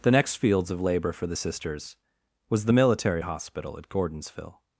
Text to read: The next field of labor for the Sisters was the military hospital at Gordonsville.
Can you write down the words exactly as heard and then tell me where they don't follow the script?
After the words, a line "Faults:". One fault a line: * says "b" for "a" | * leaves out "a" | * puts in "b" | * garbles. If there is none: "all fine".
The next fields of labor for the Sisters was the military hospital at Gordonsville.
Faults:
* says "fields" for "field"